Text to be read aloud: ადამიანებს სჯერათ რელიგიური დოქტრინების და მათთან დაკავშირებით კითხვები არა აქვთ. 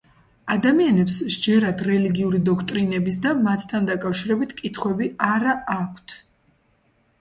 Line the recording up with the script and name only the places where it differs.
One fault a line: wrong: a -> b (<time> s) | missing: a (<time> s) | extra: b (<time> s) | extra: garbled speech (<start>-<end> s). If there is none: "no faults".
no faults